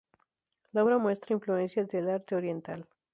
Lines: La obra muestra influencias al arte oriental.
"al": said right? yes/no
no